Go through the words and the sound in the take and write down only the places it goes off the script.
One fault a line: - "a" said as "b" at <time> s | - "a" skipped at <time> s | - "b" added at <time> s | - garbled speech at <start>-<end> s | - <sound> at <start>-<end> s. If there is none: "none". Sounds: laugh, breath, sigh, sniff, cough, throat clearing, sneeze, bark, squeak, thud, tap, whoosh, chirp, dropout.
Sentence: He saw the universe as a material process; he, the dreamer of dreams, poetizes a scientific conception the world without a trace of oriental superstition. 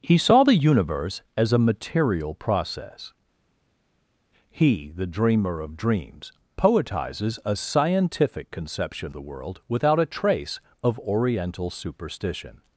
none